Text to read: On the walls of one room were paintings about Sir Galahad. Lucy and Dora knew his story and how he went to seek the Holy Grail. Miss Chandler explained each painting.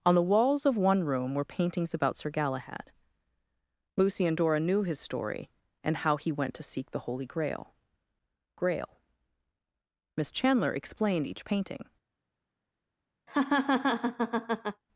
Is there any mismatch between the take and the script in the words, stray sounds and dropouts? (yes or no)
yes